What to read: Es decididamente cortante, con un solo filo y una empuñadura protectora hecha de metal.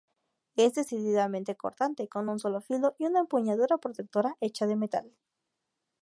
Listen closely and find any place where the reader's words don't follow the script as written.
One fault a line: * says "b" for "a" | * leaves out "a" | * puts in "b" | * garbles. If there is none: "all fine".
all fine